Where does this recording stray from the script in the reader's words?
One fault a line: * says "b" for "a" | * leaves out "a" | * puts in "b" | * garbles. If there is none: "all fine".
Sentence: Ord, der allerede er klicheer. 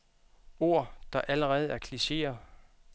all fine